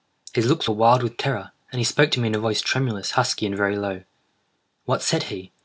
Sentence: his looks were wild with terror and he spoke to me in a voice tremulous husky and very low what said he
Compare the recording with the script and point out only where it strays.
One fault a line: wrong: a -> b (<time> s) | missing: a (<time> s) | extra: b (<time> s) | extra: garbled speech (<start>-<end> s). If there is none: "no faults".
no faults